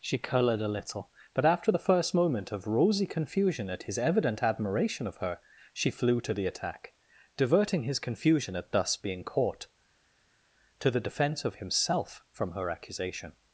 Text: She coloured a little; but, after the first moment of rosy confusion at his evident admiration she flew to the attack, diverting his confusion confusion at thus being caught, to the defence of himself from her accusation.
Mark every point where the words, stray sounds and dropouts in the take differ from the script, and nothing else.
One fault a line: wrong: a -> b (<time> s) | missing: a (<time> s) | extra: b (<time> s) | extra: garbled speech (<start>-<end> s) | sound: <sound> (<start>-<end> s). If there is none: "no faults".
extra: of her (5.1 s)
missing: confusion (8.5 s)